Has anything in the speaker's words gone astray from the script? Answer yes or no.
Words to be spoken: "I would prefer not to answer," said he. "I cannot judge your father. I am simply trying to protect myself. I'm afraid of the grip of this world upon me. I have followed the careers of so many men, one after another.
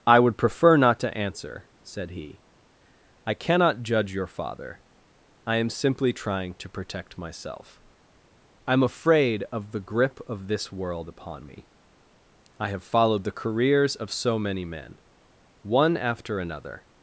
no